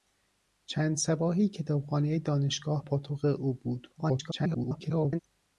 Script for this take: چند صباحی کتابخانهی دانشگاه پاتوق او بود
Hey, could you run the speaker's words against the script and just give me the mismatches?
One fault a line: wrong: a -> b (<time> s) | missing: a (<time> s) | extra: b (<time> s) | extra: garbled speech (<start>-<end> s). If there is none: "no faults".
extra: garbled speech (4.0-5.2 s)